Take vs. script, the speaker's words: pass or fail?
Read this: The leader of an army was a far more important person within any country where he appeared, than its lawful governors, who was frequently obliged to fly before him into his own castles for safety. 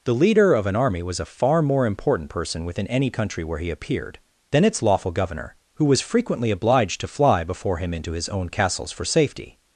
fail